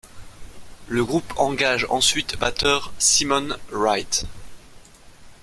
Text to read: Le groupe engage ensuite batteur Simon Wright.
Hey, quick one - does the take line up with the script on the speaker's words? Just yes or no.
yes